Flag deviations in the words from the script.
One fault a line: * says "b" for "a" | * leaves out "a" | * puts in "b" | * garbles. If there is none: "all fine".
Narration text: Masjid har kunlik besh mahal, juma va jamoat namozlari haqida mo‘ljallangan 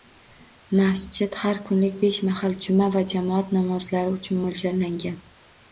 * says "uchun" for "haqida"